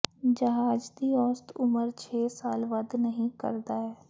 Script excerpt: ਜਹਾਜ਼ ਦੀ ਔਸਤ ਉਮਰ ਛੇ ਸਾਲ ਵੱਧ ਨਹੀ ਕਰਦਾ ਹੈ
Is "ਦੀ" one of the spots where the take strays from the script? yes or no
no